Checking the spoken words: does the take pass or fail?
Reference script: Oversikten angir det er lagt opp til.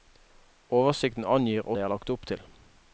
pass